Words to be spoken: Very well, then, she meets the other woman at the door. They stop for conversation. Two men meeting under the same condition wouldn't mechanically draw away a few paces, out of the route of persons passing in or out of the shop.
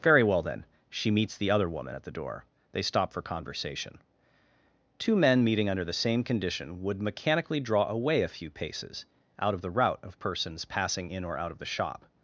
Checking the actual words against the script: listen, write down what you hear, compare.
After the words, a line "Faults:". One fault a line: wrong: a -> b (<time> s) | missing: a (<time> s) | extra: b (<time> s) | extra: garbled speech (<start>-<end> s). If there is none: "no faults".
Very well, then, she meets the other woman at the door. They stop for conversation. Two men meeting under the same condition would mechanically draw away a few paces, out of the route of persons passing in or out of the shop.
Faults:
wrong: wouldn't -> would (6.8 s)